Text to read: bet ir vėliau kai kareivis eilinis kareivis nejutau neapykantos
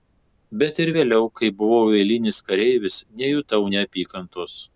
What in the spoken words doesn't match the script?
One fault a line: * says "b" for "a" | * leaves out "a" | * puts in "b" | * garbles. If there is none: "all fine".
* says "buvau" for "kareivis"